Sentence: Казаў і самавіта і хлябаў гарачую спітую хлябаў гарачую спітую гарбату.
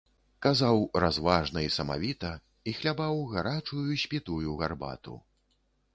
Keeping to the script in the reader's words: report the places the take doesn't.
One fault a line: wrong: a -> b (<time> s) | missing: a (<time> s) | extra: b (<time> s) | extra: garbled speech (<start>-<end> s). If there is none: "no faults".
extra: разважна (1.0 s)
missing: хлябаў гарачую спітую (4.6 s)